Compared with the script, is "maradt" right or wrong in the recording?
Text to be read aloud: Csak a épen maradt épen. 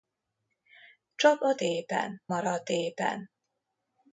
right